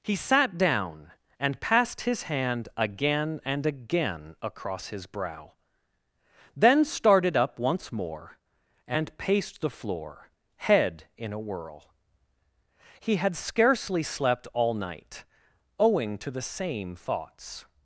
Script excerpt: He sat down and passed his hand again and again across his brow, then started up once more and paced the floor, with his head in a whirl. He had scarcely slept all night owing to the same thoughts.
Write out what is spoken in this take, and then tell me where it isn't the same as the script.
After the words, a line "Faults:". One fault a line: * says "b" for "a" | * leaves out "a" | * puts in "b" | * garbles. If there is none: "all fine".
He sat down and passed his hand again and again across his brow, then started up once more and paced the floor, head in a whirl. He had scarcely slept all night owing to the same thoughts.
Faults:
* leaves out "with his"